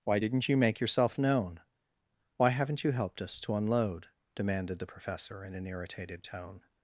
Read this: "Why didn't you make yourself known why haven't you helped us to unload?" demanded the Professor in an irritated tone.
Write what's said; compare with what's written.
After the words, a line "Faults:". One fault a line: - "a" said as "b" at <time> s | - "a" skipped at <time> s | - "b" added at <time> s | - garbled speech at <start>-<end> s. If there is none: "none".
"Why didn't you make yourself known why haven't you helped us to unload?" demanded the Professor in an irritated tone.
Faults:
none